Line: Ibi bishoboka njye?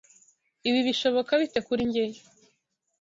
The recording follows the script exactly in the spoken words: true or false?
false